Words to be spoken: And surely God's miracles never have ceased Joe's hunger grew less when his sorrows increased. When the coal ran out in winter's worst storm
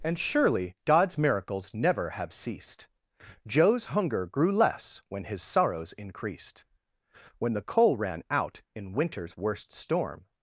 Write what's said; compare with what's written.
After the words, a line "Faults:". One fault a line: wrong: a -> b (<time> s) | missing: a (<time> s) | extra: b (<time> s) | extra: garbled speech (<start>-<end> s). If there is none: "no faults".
And surely God's miracles never have ceased Joe's hunger grew less when his sorrows increased. When the coal ran out in winter's worst storm
Faults:
no faults